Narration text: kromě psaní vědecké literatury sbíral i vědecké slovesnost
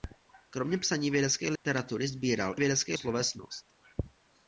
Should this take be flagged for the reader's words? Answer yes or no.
no